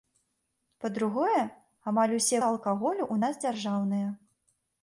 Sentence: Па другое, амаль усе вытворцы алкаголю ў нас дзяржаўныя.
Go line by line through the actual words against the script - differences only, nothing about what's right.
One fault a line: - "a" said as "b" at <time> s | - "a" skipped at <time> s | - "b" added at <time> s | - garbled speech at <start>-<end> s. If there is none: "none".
- "вытворцы" skipped at 2.4 s